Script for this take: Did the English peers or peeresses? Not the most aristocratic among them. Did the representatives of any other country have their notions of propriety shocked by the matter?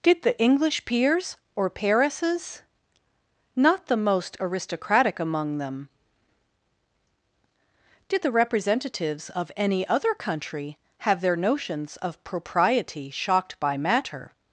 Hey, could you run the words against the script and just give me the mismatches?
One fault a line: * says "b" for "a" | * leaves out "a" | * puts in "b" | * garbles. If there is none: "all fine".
* leaves out "the"